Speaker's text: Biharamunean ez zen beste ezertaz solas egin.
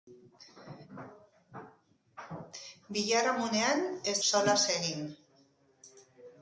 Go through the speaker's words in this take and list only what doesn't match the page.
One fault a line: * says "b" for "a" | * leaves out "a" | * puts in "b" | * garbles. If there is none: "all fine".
* leaves out "zen beste ezertaz"